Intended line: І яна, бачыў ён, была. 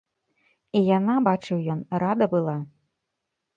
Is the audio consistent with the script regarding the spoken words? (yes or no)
no